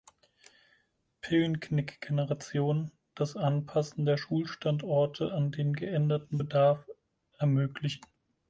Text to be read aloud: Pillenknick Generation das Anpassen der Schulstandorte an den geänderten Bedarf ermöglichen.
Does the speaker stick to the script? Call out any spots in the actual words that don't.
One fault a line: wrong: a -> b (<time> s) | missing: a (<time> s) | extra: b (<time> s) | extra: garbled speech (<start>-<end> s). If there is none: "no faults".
no faults